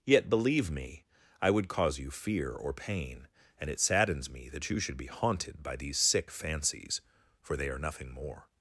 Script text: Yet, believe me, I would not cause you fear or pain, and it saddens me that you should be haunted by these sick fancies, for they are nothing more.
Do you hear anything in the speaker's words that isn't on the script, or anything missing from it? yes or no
yes